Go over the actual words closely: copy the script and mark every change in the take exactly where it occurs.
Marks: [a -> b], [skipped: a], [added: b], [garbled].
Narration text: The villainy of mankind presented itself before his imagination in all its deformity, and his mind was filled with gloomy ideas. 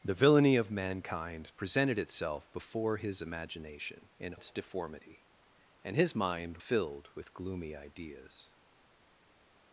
The villainy of mankind presented itself before his imagination in [skipped: all] its deformity, and his mind [skipped: was] filled with gloomy ideas.